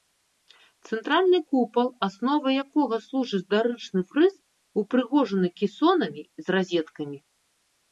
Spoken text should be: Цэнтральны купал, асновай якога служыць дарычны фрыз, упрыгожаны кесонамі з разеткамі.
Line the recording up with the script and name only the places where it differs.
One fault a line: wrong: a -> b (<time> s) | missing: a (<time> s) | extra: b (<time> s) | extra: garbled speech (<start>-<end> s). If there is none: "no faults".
no faults